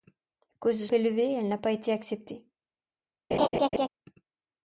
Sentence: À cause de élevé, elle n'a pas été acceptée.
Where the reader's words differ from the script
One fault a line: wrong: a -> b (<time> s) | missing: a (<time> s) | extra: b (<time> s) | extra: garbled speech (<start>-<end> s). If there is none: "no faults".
no faults